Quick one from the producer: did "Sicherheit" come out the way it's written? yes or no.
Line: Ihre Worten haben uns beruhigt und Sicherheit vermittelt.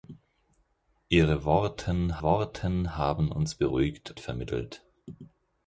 no